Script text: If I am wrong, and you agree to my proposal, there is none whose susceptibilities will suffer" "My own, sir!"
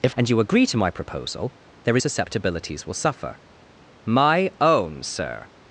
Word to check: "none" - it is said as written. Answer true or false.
false